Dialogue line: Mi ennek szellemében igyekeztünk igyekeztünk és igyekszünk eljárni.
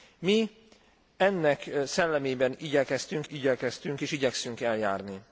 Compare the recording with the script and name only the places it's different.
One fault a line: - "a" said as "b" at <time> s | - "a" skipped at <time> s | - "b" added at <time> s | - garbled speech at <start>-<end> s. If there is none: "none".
none